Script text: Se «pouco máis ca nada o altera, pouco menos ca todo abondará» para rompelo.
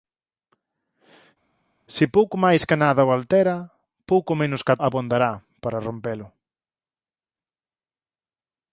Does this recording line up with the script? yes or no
no